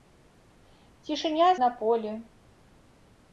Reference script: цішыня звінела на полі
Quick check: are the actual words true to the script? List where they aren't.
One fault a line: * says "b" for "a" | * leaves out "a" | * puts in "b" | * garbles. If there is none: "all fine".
* leaves out "звінела"